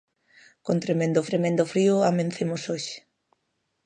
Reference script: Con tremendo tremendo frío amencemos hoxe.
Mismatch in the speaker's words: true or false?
false